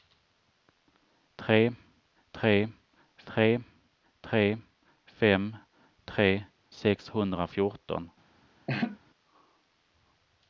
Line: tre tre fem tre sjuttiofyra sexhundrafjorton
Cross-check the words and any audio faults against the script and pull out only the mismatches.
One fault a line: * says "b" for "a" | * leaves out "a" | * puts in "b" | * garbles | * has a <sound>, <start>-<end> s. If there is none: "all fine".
* puts in "tre tre"
* leaves out "sjuttiofyra"
* has a laugh, 8.7-9.0 s